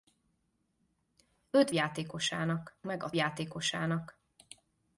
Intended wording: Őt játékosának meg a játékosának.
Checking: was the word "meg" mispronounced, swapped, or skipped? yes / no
no